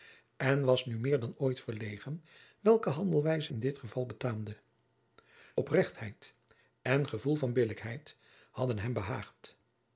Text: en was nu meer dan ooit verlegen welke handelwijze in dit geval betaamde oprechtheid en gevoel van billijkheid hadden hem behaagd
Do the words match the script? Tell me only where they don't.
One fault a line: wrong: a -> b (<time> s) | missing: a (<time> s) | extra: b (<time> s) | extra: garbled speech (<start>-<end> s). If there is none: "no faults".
no faults